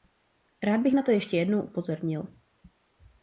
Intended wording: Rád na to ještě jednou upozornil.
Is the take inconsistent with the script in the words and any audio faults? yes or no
yes